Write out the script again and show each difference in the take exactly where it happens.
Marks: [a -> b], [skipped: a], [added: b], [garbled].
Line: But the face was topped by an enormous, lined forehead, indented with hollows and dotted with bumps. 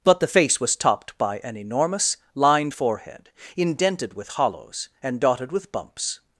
But the face was topped by an enormous, lined forehead, indented with hollows and dotted with bumps.